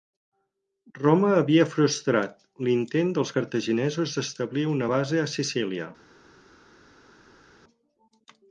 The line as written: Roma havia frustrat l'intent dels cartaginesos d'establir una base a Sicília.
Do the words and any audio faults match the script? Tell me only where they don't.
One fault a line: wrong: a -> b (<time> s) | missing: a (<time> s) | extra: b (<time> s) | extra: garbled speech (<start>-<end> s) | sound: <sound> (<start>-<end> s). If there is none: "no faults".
no faults